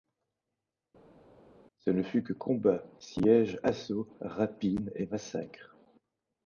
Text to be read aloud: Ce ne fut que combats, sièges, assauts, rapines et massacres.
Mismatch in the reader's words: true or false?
false